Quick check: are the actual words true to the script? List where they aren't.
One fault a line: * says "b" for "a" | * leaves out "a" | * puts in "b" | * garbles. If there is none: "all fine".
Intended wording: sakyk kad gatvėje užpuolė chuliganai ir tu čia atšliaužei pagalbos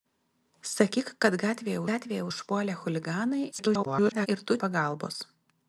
* puts in "gatvėje"
* garbles
* leaves out "čia atšliaužei"